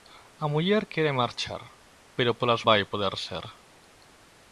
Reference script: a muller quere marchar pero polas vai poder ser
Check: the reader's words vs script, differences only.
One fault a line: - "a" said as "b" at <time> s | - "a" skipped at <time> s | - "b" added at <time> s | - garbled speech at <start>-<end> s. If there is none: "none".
none